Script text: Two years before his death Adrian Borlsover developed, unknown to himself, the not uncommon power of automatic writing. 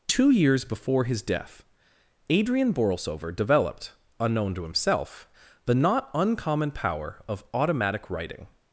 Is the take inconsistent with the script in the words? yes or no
no